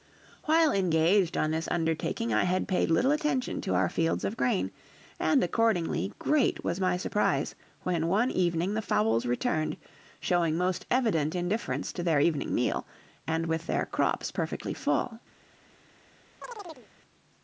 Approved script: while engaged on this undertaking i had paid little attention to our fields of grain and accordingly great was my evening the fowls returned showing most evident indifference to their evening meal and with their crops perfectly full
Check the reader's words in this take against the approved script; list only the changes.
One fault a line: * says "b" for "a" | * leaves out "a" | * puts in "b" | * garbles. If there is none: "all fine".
* puts in "surprise when one"